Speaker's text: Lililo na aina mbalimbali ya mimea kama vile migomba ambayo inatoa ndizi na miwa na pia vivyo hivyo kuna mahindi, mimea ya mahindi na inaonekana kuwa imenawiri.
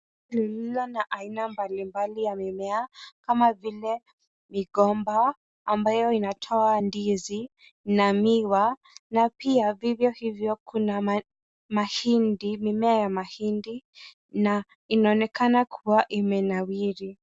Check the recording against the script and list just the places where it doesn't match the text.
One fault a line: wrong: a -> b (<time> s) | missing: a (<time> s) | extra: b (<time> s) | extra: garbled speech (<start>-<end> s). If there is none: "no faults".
no faults